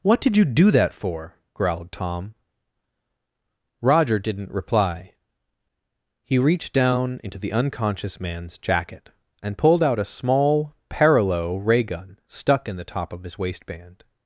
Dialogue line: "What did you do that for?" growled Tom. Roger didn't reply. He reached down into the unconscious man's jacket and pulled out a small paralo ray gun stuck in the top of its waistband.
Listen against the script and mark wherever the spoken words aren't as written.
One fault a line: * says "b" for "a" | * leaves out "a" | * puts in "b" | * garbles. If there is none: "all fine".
* says "his" for "its"